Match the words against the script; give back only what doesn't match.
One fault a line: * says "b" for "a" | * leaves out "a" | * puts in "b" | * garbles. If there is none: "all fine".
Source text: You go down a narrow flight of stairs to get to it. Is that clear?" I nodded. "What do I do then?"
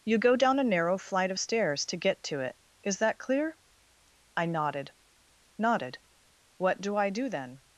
* puts in "nodded"